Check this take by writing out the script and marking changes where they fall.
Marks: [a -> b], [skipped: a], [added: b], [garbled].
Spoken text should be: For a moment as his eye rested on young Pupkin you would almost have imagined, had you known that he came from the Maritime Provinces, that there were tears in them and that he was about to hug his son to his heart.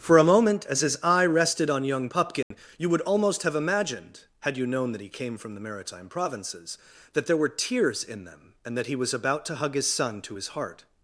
For a moment as his eye rested on young Pupkin you would almost have imagined, had you known that he came from the Maritime Provinces, that there were tears in them and that he was about to hug his son to his heart.